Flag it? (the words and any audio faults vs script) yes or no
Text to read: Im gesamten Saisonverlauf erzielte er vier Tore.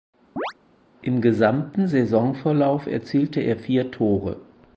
yes